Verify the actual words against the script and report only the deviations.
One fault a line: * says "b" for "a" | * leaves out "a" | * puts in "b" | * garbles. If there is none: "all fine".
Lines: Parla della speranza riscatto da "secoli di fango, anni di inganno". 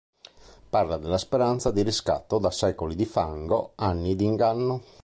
* puts in "di"